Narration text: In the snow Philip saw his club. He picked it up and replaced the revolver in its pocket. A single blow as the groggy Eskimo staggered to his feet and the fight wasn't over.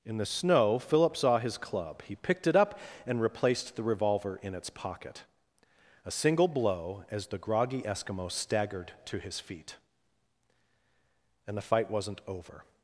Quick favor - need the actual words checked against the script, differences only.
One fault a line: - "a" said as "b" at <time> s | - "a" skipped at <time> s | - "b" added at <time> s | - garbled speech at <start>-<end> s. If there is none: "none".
none